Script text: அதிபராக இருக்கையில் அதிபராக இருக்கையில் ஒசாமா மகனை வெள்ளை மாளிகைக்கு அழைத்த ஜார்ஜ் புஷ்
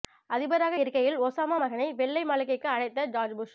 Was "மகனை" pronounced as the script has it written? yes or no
yes